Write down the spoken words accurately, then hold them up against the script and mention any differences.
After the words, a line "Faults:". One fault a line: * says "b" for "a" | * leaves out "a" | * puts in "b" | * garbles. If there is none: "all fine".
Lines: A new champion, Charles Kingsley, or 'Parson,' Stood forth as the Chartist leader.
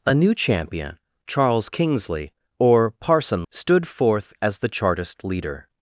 A new champion, Charles Kingsley, or 'Parson,' Stood forth as the Chartist leader.
Faults:
all fine